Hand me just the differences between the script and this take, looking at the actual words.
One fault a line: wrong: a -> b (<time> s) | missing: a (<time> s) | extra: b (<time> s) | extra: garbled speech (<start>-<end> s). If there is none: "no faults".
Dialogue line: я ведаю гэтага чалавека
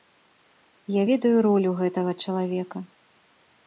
extra: ролю (1.5 s)